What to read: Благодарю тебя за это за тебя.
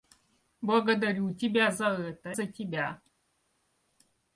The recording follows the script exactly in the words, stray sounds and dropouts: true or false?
true